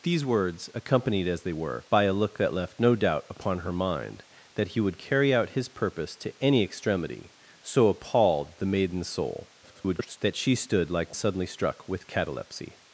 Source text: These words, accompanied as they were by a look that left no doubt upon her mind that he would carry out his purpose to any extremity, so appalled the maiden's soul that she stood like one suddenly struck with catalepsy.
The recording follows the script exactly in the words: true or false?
false